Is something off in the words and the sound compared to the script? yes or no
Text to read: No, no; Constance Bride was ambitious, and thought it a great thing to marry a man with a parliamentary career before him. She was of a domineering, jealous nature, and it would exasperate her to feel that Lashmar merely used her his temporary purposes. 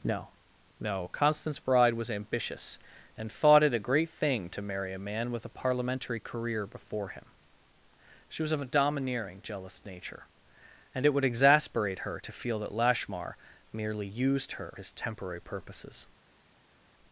no